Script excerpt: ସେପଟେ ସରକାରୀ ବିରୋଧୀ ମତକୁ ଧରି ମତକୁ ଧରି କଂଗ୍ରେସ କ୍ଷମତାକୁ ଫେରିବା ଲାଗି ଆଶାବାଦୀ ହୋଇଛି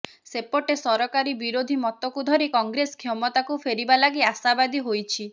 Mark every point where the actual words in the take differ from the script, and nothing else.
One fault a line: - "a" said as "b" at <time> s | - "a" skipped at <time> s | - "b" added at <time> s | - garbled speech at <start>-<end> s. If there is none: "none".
- "ମତକୁ ଧରି" skipped at 2.5 s